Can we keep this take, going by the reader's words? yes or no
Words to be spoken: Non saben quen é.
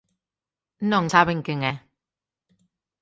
yes